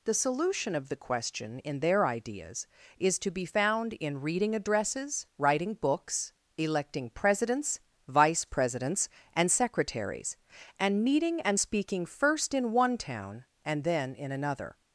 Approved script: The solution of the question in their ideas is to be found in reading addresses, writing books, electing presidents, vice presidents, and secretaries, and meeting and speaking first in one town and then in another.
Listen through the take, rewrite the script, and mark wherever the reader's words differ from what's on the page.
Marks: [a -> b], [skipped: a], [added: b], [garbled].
The solution of the question in their ideas is to be found in reading addresses, writing books, electing presidents, vice presidents, and secretaries, and meeting and speaking first in one town and then in another.